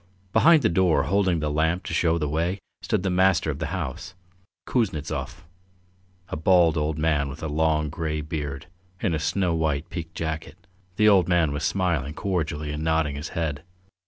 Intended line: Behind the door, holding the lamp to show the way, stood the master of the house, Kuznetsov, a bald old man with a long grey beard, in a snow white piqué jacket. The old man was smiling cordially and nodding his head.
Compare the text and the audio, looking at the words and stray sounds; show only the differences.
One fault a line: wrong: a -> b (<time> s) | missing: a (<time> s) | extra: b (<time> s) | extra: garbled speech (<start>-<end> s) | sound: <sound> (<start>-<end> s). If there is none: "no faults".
no faults